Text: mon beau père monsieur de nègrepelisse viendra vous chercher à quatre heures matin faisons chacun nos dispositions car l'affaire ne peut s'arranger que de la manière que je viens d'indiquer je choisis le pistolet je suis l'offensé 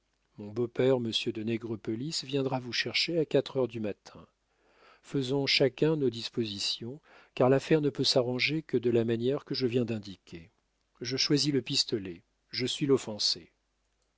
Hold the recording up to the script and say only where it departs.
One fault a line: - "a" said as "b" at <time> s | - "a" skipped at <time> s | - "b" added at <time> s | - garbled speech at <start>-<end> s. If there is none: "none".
- "du" added at 3.7 s